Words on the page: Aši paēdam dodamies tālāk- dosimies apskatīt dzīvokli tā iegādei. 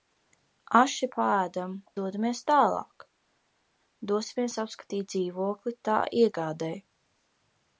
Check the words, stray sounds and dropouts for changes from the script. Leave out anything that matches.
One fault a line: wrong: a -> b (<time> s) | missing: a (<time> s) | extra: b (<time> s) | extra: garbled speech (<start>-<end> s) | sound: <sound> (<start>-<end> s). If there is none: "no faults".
no faults